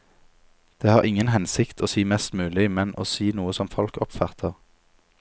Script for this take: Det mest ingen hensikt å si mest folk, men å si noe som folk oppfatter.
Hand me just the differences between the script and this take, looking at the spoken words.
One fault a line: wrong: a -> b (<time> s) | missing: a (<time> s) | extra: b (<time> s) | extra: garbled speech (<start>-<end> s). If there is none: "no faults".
wrong: mest -> har (0.9 s)
wrong: folk -> mulig (2.3 s)